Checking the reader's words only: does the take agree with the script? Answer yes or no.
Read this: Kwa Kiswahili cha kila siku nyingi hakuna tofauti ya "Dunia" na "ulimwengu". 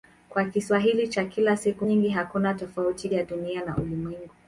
yes